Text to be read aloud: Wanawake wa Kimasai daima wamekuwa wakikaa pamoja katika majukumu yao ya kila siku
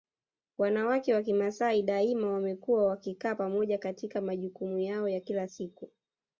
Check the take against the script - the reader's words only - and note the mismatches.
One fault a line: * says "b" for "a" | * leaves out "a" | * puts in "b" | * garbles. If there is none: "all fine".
all fine